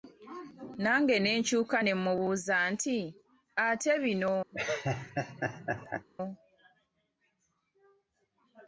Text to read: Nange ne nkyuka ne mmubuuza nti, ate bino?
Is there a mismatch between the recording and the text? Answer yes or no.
no